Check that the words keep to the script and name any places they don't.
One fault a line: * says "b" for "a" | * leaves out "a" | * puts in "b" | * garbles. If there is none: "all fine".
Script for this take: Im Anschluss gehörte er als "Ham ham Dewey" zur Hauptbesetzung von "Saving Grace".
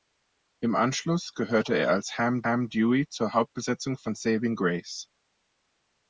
all fine